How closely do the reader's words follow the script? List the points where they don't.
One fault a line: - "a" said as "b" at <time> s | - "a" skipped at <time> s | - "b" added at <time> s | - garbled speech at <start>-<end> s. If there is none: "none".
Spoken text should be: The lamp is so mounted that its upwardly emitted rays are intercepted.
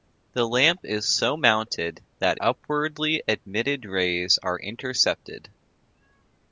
- "its" skipped at 2.4 s